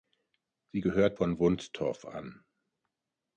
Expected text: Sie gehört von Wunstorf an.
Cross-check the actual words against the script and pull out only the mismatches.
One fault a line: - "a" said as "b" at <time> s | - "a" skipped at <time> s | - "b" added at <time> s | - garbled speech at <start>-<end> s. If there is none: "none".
none